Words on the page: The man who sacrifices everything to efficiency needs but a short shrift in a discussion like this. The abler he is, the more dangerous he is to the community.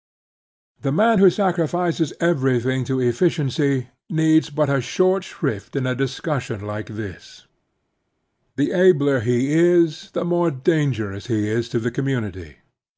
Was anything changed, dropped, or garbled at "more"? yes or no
no